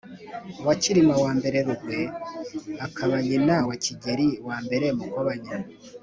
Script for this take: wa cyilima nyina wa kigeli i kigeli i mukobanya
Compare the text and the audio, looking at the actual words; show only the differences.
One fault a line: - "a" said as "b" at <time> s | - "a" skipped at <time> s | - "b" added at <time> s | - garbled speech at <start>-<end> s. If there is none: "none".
- "i rugwe akaba" added at 1.2 s
- "kigeli i" skipped at 4.9 s